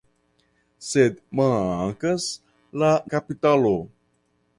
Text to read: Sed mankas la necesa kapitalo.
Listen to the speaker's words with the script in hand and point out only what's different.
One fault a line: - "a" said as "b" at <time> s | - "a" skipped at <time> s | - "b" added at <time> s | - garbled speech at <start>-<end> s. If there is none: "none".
- "necesa" skipped at 2.9 s